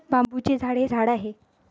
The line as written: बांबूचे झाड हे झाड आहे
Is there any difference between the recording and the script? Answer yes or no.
no